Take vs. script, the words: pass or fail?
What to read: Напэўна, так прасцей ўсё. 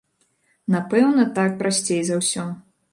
fail